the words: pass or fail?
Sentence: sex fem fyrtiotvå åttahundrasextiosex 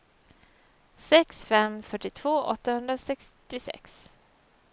pass